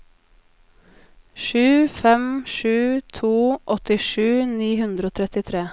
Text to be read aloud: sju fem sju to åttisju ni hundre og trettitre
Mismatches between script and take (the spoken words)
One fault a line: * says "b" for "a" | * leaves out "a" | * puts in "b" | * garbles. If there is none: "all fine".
all fine